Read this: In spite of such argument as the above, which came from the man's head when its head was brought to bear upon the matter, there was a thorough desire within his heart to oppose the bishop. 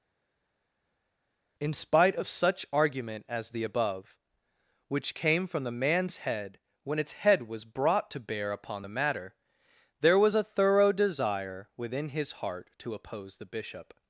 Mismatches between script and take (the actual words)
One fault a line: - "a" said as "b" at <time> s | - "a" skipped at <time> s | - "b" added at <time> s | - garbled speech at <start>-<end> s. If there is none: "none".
none